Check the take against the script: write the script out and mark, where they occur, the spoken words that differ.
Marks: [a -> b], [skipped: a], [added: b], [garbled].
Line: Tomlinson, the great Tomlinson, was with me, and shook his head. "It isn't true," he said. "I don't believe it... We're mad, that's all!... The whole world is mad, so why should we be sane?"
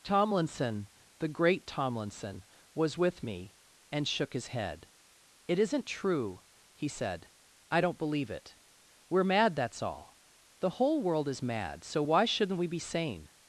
Tomlinson, the great Tomlinson, was with me, and shook his head. "It isn't true," he said. "I don't believe it... We're mad, that's all!... The whole world is mad, so why [should -> shouldn't] we be sane?"